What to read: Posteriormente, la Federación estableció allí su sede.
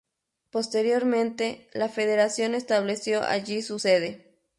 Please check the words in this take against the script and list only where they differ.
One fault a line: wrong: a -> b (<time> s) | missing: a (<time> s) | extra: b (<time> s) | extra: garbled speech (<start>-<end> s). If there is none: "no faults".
no faults